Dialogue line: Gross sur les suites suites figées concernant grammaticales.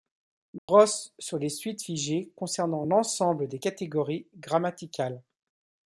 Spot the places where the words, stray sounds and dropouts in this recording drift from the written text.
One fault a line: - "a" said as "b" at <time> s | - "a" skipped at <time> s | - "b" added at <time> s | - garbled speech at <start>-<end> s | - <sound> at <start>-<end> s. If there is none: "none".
- dropout at 0.6-0.7 s
- "suites" skipped at 1.8 s
- "l'ensemble des catégories" added at 2.8 s